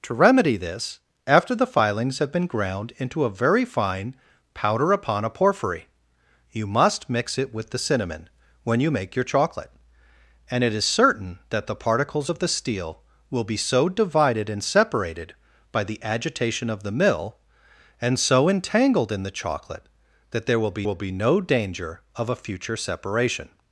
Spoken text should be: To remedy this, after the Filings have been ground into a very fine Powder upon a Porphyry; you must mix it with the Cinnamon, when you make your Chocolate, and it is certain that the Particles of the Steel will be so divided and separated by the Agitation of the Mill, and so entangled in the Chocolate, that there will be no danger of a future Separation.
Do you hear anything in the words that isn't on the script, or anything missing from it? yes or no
yes